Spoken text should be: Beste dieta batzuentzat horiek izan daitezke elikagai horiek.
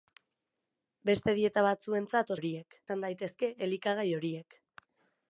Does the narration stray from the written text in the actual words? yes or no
no